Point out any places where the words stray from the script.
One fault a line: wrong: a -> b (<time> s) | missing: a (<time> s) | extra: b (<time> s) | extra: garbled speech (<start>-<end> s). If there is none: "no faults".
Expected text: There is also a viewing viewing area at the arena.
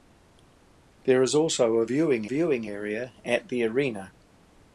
no faults